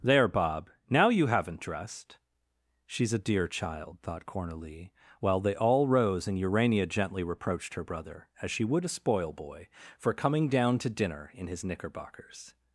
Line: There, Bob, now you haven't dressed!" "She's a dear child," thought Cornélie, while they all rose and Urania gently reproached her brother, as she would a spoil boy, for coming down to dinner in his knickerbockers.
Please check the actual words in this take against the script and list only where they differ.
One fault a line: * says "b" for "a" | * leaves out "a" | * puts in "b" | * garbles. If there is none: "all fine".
all fine